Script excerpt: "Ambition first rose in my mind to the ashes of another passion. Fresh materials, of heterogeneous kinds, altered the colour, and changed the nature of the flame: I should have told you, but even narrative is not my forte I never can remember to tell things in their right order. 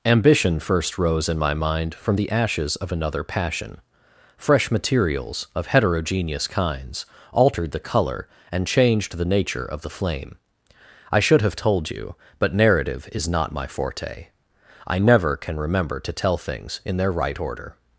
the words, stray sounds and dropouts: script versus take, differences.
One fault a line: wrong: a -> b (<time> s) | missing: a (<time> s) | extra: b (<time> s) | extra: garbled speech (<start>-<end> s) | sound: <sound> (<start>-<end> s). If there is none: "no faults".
wrong: to -> from (1.9 s)
missing: even (12.5 s)